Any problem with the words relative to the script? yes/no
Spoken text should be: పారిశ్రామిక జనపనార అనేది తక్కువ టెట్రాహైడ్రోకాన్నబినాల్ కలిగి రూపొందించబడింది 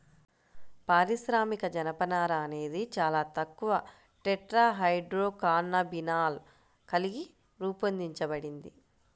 yes